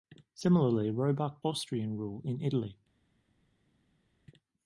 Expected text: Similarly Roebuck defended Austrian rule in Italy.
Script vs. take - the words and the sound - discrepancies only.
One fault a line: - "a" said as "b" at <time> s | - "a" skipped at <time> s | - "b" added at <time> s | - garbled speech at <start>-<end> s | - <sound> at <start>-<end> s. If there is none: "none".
- "defended" skipped at 1.4 s